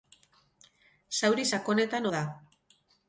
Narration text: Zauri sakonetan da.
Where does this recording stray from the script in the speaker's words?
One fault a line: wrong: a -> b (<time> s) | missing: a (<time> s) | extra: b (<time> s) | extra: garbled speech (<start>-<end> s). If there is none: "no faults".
no faults